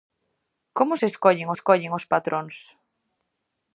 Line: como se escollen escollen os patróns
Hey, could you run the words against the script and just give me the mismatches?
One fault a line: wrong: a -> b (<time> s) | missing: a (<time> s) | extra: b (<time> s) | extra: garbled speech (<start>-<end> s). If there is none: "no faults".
no faults